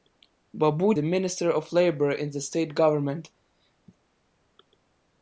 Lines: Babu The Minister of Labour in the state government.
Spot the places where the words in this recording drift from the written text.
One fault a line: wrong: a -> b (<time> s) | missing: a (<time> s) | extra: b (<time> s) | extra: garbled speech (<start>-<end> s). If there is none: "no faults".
no faults